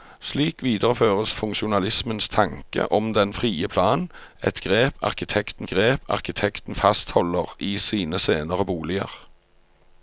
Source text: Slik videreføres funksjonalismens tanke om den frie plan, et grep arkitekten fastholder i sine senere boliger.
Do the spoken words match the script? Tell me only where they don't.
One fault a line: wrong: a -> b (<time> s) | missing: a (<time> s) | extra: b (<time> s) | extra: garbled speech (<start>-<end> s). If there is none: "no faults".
extra: grep arkitekten (5.7 s)